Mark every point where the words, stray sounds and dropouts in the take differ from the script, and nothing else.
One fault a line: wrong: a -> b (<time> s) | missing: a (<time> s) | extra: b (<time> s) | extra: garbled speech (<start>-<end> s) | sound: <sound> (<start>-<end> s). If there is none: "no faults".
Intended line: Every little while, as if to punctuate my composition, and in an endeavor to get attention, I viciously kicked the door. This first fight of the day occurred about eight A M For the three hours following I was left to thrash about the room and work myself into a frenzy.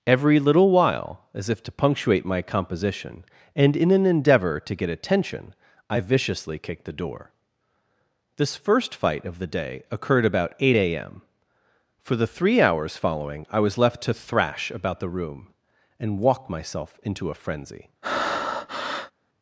wrong: work -> walk (16.2 s)
sound: breath (18.0-19.1 s)